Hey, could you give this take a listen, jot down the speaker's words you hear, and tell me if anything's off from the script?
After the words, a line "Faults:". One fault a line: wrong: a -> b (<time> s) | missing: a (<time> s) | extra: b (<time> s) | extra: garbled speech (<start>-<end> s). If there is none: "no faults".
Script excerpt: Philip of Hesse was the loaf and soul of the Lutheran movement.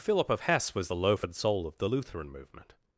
Philip of Hesse was the loaf and soul of the Lutheran movement.
Faults:
no faults